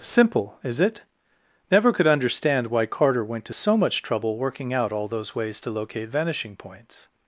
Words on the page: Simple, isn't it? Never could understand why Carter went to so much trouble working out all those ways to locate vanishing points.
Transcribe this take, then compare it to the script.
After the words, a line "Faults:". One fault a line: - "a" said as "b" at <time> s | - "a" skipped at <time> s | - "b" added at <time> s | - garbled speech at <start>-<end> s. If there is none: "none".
Simple, is it? Never could understand why Carter went to so much trouble working out all those ways to locate vanishing points.
Faults:
- "isn't" said as "is" at 0.6 s